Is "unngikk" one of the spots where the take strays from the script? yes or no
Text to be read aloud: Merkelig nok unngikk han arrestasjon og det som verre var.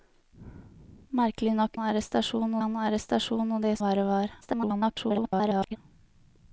yes